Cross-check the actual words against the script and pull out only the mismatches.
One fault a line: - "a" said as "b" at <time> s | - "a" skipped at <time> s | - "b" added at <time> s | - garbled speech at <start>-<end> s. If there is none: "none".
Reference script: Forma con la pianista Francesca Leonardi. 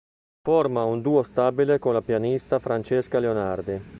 - "un duo stabile" added at 0.8 s